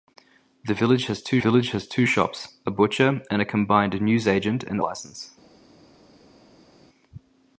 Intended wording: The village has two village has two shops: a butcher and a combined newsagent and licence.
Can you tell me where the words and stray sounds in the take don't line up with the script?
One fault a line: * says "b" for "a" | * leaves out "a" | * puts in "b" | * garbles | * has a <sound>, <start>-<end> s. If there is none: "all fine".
all fine